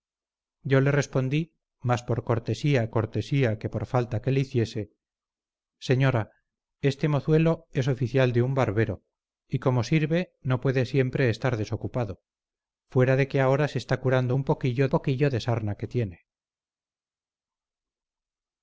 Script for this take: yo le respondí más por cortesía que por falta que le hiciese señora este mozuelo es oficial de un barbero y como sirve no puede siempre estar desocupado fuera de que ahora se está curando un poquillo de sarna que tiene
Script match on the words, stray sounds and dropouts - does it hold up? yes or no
no